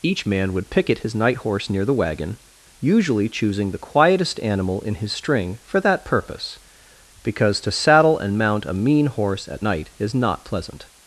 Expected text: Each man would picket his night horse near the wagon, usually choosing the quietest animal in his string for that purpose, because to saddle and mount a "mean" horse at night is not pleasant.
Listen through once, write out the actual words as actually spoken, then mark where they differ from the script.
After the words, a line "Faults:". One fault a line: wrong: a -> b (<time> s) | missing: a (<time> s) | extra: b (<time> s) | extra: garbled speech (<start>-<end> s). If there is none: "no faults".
Each man would picket his night horse near the wagon, usually choosing the quietest animal in his string for that purpose, because to saddle and mount a "mean" horse at night is not pleasant.
Faults:
no faults